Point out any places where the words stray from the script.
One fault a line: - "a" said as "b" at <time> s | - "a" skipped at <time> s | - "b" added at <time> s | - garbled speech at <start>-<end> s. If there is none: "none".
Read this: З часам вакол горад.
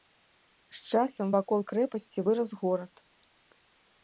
- "крэпасці вырас" added at 1.7 s